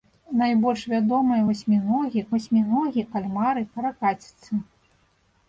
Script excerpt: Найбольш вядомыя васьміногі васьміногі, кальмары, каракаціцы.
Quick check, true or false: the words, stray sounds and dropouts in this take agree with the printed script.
true